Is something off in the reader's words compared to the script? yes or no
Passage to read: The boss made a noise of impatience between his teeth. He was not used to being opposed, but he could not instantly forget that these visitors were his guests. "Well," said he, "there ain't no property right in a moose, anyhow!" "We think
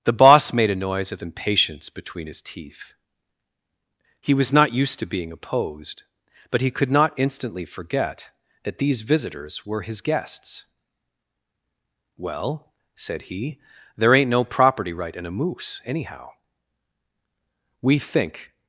no